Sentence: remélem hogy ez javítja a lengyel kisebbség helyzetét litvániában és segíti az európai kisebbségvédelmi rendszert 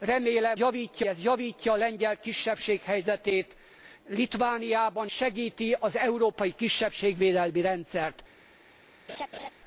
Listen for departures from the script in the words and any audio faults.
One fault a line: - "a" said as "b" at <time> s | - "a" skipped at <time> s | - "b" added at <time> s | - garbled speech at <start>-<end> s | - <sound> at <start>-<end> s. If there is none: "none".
- "hogy" said as "javítja" at 0.6 s
- "és" skipped at 5.1 s
- laugh at 9.1-9.5 s